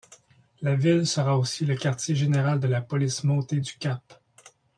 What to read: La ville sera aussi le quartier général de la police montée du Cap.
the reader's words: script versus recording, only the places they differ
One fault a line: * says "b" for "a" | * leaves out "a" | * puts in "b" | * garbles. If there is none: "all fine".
all fine